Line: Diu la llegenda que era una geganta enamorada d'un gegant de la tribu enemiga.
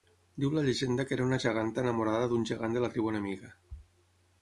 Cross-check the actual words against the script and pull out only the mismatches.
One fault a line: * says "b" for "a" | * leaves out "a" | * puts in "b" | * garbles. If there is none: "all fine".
all fine